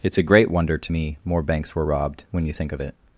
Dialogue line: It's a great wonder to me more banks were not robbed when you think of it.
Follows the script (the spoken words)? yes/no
no